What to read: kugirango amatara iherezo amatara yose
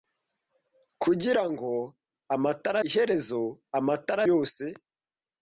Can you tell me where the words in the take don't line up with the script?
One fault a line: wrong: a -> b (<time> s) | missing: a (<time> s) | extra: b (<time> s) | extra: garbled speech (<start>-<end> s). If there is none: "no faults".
no faults